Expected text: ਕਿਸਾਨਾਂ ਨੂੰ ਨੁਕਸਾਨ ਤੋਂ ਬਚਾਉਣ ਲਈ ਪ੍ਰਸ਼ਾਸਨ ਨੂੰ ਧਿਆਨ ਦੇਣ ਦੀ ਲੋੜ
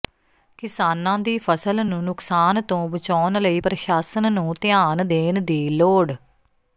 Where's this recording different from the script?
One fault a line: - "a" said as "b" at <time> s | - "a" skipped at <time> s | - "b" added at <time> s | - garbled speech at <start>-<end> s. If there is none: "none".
- "ਦੀ ਫ਼ਸਲ" added at 1.2 s